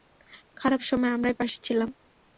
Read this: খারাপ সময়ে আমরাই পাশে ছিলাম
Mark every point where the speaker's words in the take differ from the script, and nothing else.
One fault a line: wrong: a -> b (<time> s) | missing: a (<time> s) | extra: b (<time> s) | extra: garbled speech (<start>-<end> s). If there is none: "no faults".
no faults